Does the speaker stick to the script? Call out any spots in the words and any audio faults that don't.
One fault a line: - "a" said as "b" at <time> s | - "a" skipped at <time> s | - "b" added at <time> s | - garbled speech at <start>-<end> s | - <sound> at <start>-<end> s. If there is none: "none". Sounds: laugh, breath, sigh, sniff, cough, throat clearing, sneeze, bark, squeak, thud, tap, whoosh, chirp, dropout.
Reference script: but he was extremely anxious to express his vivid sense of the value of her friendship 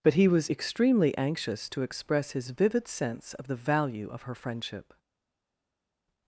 none